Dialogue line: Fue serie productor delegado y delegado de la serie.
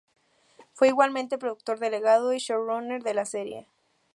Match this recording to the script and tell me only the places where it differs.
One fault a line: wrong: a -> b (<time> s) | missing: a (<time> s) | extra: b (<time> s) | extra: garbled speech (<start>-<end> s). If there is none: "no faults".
wrong: serie -> igualmente (0.9 s)
wrong: delegado -> showrunner (2.4 s)